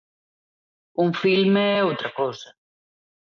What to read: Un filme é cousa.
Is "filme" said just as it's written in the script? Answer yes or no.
yes